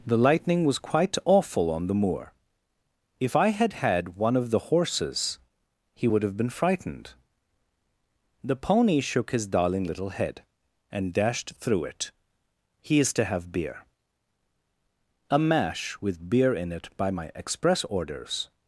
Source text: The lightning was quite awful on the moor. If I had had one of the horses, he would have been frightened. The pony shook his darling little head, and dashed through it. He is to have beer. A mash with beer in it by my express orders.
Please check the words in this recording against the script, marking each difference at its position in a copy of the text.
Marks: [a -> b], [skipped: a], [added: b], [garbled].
The lightning was quite awful on the moor. If I had had one of the horses, he would have been frightened. The pony shook his darling little head, and dashed through it. He is to have beer. A mash with beer in it by my express orders.